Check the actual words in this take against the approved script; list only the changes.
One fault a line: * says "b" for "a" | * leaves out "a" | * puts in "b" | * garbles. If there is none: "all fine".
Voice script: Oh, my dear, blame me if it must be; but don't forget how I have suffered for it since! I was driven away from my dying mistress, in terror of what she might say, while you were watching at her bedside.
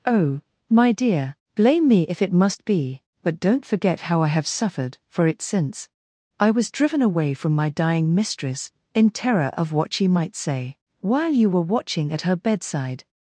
all fine